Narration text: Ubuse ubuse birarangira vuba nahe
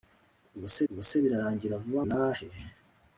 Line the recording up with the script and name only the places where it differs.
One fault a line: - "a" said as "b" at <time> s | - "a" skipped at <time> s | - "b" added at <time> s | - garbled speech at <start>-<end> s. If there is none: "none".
none